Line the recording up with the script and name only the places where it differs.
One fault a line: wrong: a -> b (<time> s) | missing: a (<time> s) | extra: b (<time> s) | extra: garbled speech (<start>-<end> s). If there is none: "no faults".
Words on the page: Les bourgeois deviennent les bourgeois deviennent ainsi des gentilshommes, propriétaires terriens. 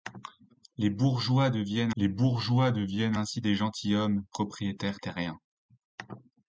no faults